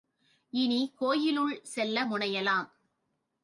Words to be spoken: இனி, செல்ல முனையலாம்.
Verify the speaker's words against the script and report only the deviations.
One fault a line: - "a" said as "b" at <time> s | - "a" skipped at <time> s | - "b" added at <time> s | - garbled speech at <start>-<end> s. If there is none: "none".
- "கோயிலுள்" added at 1.0 s